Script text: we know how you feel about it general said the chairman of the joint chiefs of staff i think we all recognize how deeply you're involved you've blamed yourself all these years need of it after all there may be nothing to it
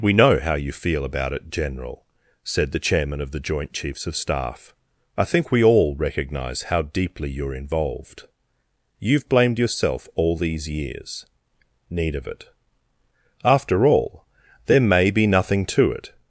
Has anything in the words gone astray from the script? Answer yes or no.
no